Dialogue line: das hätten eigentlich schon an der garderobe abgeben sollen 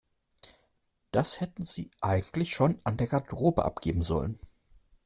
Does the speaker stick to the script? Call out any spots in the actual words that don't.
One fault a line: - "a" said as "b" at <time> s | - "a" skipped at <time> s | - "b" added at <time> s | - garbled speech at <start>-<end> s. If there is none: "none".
- "sie" added at 1.6 s